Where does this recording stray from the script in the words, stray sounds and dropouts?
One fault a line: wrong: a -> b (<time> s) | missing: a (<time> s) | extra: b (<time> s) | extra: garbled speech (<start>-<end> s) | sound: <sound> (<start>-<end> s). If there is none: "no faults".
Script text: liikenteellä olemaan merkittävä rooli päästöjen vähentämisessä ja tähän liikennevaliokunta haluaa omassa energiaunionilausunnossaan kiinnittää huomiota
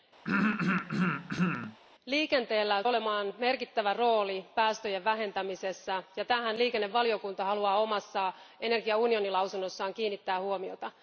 sound: throat clearing (0.2-1.8 s)